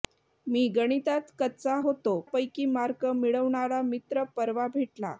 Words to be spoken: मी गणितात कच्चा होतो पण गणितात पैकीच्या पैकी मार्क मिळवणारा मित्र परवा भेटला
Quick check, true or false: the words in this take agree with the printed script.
false